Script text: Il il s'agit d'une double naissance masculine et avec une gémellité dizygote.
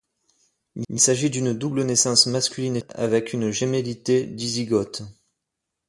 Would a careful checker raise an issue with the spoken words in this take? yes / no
no